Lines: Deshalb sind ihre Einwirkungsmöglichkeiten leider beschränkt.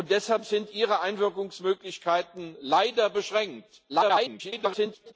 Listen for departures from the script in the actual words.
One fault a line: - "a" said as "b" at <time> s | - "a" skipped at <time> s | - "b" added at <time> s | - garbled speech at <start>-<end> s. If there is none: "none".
- garbled speech at 3.9-5.1 s